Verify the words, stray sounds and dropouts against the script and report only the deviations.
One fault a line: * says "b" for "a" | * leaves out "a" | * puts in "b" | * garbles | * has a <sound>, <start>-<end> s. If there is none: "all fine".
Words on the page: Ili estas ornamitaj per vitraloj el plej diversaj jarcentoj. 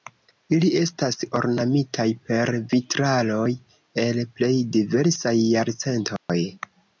* has a dropout, 6.2-6.3 s